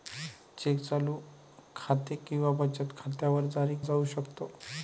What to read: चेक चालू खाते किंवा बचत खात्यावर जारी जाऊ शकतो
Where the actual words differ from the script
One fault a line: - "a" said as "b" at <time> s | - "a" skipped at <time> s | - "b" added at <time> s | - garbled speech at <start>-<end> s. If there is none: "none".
none